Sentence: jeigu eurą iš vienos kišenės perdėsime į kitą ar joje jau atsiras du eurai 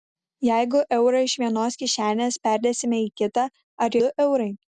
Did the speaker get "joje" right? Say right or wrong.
wrong